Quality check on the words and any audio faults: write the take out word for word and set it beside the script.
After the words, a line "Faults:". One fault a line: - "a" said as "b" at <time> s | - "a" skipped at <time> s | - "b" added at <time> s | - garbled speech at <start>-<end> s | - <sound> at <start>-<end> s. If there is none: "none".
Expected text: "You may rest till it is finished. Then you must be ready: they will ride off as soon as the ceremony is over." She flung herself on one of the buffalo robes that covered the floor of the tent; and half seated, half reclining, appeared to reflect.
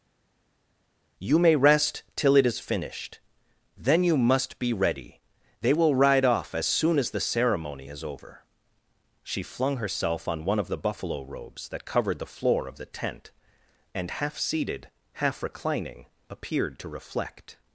"You may rest till it is finished. Then you must be ready: they will ride off as soon as the ceremony is over." She flung herself on one of the buffalo robes that covered the floor of the tent; and half seated, half reclining, appeared to reflect.
Faults:
none